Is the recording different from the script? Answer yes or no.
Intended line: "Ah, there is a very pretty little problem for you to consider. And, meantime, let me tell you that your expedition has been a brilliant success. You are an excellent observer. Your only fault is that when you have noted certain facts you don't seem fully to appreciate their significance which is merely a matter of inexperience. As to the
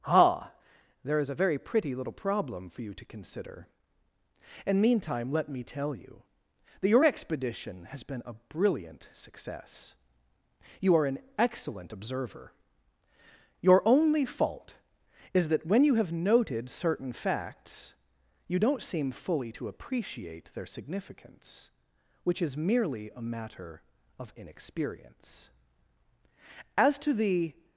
no